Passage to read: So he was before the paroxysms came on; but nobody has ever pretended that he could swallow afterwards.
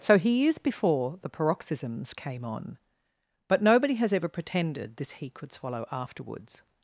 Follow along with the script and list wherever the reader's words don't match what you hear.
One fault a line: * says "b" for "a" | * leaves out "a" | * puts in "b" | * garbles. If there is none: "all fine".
* says "is" for "was"
* says "this" for "that"